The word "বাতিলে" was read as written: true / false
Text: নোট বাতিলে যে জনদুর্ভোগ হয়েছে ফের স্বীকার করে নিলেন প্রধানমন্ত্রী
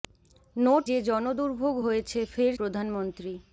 false